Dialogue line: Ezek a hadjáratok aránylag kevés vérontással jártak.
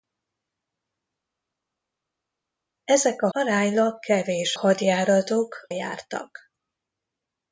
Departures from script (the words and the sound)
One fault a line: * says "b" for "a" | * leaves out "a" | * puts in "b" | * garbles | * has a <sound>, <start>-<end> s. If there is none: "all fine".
* leaves out "hadjáratok"
* says "hadjáratok" for "vérontással"